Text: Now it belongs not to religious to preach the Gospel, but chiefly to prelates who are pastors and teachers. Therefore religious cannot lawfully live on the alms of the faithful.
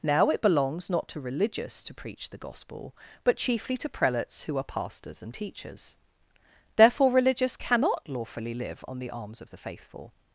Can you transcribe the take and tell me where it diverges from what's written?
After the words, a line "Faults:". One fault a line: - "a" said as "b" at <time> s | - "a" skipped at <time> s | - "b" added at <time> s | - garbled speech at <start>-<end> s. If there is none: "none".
Now it belongs not to religious to preach the Gospel, but chiefly to prelates who are pastors and teachers. Therefore religious cannot lawfully live on the alms of the faithful.
Faults:
none